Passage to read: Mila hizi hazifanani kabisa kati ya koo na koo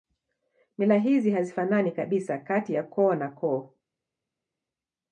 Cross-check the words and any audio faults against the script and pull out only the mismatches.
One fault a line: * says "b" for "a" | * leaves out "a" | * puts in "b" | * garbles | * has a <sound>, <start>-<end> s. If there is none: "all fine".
all fine